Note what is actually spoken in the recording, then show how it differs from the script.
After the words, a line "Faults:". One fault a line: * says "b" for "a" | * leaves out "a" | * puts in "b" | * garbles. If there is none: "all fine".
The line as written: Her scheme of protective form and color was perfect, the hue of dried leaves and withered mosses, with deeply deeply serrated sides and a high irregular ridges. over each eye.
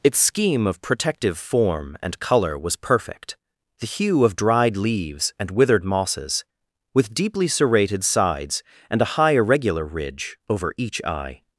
Its scheme of protective form and color was perfect, the hue of dried leaves and withered mosses, with deeply serrated sides and a high irregular ridge. over each eye.
Faults:
* says "Its" for "Her"
* leaves out "deeply"
* says "ridge" for "ridges"